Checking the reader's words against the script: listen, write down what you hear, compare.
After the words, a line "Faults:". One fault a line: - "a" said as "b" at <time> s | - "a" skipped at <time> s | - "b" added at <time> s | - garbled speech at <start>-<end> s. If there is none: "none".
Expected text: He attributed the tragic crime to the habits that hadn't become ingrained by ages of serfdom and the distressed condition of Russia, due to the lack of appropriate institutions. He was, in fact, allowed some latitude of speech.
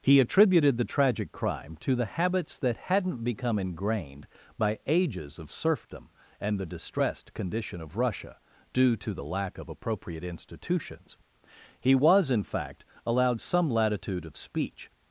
He attributed the tragic crime to the habits that hadn't become ingrained by ages of serfdom and the distressed condition of Russia, due to the lack of appropriate institutions. He was, in fact, allowed some latitude of speech.
Faults:
none